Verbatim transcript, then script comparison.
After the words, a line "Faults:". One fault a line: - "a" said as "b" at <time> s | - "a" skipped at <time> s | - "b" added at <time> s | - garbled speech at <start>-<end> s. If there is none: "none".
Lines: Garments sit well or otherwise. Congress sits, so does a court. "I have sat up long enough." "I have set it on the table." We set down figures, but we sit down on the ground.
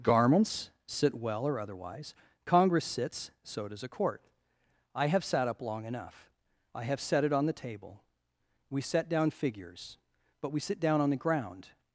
Garments sit well or otherwise. Congress sits, so does a court. "I have sat up long enough." "I have set it on the table." We set down figures, but we sit down on the ground.
Faults:
none